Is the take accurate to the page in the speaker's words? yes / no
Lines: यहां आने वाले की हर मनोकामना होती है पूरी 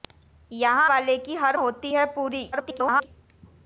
no